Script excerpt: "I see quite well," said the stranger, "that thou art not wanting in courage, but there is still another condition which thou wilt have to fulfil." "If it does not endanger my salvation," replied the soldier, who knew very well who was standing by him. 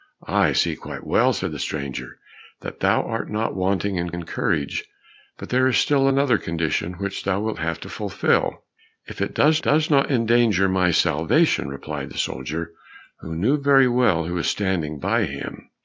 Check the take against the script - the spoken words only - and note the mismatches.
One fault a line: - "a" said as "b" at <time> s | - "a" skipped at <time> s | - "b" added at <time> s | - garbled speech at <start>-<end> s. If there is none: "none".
- "in" added at 4.1 s
- "does" added at 9.6 s